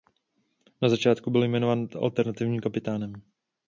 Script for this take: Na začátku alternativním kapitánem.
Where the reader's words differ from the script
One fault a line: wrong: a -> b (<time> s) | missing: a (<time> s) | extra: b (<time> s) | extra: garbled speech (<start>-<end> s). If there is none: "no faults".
extra: byl jmenován (1.3 s)